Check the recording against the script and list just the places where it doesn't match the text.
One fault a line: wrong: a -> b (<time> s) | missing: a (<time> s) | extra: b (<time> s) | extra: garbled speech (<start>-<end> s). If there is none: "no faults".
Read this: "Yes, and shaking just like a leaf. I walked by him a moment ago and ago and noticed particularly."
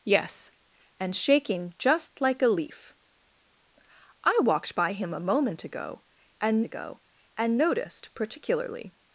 no faults